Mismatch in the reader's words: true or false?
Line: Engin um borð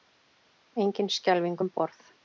true